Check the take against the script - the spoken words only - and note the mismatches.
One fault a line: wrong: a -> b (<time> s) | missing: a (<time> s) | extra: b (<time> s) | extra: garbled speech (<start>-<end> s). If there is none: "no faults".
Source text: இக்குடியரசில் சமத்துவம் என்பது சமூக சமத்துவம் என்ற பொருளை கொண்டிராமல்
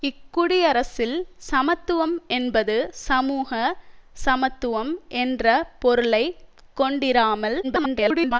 extra: garbled speech (7.6-8.4 s)